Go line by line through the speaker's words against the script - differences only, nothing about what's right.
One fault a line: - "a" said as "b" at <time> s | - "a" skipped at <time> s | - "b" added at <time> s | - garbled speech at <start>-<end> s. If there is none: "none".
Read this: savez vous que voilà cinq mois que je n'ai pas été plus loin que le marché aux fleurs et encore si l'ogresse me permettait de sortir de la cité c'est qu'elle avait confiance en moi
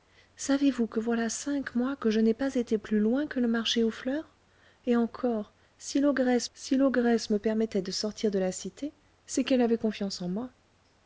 - "si l'ogresse" added at 6.5 s